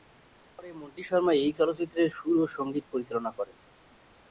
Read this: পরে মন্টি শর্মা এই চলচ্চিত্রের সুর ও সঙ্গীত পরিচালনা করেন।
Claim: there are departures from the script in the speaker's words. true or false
false